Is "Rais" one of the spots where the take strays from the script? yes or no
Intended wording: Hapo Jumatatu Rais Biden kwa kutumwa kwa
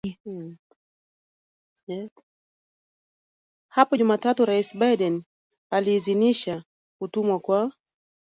no